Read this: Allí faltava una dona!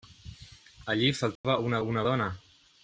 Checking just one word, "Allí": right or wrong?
right